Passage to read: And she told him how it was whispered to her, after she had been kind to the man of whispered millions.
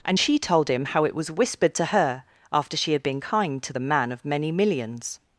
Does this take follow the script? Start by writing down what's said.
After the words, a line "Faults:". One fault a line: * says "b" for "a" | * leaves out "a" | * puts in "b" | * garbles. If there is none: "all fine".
And she told him how it was whispered to her, after she had been kind to the man of many millions.
Faults:
* says "many" for "whispered"